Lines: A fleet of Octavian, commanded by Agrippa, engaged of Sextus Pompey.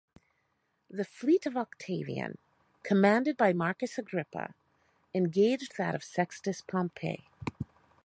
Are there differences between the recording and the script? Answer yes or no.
yes